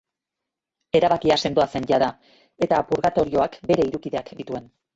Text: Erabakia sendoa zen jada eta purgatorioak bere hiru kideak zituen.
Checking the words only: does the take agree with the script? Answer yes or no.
yes